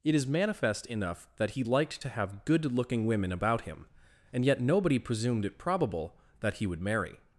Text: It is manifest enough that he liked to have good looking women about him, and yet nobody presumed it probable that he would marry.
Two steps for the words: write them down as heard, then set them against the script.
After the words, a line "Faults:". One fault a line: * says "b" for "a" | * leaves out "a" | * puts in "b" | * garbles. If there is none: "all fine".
It is manifest enough that he liked to have good looking women about him, and yet nobody presumed it probable that he would marry.
Faults:
all fine